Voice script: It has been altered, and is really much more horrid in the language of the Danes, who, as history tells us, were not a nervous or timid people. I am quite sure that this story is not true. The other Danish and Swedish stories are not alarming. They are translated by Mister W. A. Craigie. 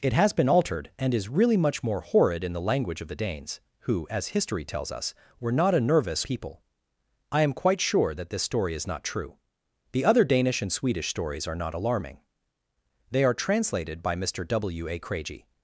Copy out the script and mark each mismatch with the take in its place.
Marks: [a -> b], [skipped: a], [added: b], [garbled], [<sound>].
It has been altered, and is really much more horrid in the language of the Danes, who, as history tells us, were not a nervous [skipped: or timid] people. I am quite sure that this story is not true. The other Danish and Swedish stories are not alarming. They are translated by Mister W. A. Craigie.